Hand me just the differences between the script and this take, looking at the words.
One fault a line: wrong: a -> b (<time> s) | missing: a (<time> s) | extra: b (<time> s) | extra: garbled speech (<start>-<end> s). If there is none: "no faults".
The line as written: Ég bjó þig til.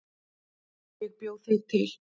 no faults